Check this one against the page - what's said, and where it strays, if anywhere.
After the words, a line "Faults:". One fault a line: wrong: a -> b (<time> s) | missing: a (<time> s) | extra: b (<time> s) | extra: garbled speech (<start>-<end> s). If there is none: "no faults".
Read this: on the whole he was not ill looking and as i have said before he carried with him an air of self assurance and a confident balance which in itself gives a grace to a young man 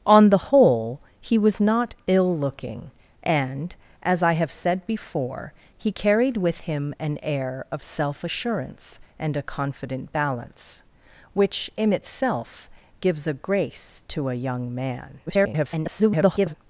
on the whole he was not ill looking and as i have said before he carried with him an air of self assurance and a confident balance which in itself gives a grace to a young man [garbled]
Faults:
extra: garbled speech (15.3-16.5 s)